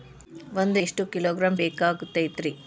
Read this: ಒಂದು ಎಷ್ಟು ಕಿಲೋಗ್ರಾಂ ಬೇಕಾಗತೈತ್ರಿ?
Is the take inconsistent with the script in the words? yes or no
no